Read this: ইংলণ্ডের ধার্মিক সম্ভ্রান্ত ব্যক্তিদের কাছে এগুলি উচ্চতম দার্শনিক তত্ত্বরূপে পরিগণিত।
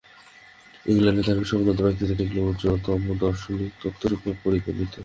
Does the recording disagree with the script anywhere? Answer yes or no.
yes